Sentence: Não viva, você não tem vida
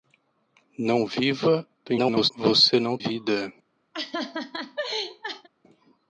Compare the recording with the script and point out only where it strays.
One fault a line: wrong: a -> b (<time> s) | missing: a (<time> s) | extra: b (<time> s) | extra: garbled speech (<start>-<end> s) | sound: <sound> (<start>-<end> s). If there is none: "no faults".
extra: garbled speech (1.9-2.3 s)
missing: tem (3.0 s)
sound: laugh (3.9-5.5 s)